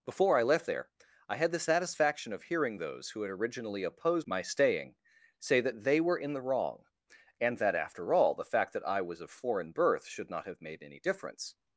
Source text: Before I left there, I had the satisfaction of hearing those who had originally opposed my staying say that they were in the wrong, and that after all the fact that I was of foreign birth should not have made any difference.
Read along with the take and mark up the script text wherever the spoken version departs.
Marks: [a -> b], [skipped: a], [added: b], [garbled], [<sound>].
Before I left there, I had the satisfaction of hearing those who had originally opposed my staying say that they were in the wrong, and that after all the fact that I was of foreign birth should not have made any difference.